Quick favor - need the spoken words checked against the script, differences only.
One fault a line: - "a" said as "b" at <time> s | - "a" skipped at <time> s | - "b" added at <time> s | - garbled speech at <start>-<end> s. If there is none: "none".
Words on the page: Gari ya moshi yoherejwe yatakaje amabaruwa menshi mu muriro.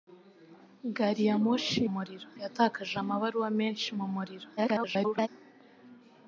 - "yoherejwe" said as "muriro" at 1.9 s
- garbled speech at 4.6-5.3 s